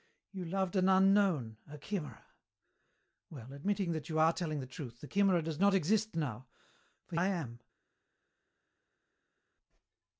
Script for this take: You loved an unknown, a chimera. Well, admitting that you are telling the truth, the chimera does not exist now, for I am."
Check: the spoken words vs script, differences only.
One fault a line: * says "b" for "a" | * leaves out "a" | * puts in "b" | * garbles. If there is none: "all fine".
all fine